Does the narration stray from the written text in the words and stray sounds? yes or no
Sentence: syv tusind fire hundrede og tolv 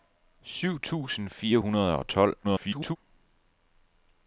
yes